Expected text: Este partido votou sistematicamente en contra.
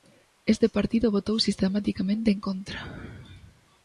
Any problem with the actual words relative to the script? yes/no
no